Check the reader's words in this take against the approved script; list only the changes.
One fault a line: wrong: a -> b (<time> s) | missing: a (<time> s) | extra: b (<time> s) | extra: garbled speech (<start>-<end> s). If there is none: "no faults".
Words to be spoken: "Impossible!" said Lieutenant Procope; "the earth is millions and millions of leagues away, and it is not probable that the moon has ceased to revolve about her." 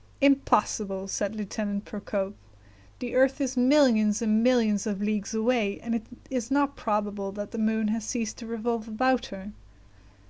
no faults